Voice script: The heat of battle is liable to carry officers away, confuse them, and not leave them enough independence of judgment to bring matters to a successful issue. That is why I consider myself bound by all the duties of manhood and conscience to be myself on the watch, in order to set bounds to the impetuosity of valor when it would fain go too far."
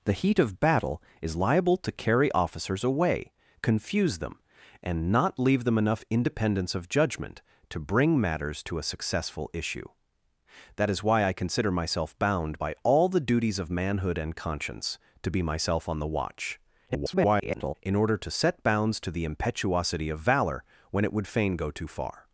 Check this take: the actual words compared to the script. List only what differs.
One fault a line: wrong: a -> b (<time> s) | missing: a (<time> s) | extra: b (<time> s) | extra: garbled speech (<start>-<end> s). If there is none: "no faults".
extra: garbled speech (16.9-17.7 s)